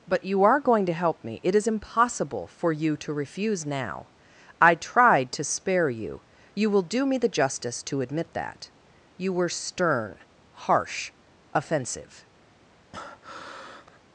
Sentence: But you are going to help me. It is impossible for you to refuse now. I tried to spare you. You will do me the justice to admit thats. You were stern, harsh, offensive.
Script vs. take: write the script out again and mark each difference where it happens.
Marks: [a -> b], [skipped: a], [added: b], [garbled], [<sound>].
But you are going to help me. It is impossible for you to refuse now. I tried to spare you. You will do me the justice to admit [thats. -> that] You were stern, harsh, offensive. [breath]